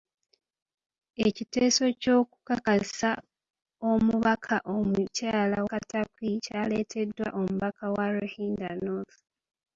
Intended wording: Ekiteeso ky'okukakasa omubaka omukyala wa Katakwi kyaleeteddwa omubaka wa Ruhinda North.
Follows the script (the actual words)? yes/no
no